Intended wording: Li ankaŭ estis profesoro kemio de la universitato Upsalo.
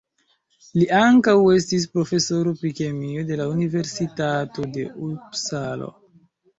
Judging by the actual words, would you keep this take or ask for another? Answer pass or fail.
fail